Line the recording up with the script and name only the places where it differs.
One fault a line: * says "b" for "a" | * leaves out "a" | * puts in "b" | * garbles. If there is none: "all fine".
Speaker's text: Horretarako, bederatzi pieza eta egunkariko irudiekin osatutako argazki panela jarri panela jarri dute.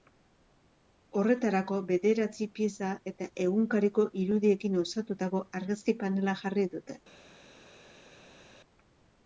* leaves out "panela jarri"